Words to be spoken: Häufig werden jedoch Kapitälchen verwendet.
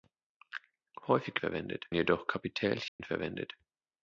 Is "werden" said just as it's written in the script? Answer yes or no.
no